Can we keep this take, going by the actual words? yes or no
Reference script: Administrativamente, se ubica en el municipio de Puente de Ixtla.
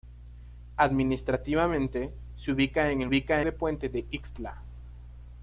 no